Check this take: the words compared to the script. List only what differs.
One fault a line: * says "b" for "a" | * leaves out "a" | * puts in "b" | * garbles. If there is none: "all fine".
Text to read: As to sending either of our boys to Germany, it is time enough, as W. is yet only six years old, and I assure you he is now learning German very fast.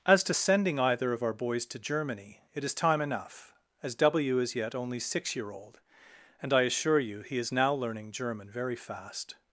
* says "year" for "years"